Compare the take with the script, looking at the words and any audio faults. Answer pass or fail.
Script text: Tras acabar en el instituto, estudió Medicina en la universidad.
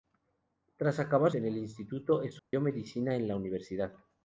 fail